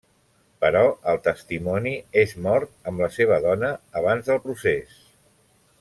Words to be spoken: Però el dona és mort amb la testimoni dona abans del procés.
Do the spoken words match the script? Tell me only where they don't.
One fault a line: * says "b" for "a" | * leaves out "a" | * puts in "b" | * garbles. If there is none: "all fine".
* says "testimoni" for "dona"
* says "seva" for "testimoni"